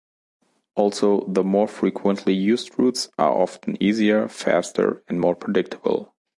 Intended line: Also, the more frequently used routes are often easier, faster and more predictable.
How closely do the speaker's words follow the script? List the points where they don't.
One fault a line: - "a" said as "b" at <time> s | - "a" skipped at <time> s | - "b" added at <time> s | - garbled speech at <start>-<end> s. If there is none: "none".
none